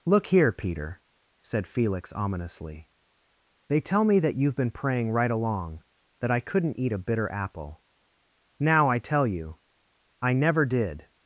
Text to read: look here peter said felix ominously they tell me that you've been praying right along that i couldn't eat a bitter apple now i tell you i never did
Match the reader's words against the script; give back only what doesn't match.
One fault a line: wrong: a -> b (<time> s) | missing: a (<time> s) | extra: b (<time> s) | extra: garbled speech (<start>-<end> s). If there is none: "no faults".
no faults